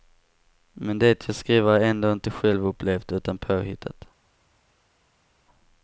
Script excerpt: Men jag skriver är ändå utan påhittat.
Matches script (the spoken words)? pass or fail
fail